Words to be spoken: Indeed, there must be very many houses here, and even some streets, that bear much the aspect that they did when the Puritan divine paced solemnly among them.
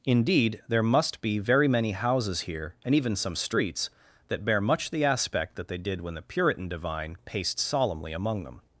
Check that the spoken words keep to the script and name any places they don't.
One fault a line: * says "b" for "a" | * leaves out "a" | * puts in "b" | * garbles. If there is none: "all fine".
all fine